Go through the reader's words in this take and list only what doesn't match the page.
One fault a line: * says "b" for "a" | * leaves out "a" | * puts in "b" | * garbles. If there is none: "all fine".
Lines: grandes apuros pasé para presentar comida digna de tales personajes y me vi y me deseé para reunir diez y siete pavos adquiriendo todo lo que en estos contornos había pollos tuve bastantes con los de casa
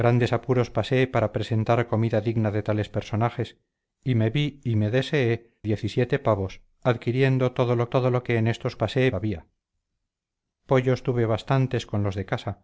* leaves out "para reunir"
* puts in "todo lo"
* says "pasé" for "contornos"